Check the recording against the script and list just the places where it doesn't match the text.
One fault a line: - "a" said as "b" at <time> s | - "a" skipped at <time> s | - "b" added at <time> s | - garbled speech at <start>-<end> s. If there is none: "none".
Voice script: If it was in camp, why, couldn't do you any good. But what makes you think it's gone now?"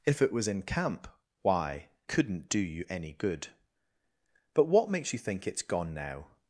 none